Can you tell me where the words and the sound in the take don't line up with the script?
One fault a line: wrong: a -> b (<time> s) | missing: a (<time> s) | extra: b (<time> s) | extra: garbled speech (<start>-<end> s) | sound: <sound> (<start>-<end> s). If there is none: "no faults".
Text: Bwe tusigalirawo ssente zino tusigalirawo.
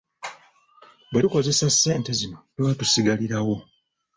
wrong: tusigalirawo -> tukozesa (1.2 s)
extra: tuba (2.5 s)